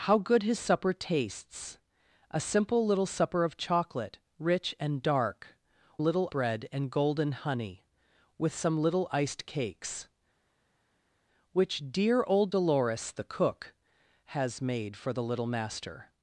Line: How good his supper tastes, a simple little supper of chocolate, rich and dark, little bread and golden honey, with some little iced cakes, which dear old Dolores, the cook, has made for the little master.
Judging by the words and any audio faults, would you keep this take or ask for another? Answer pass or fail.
pass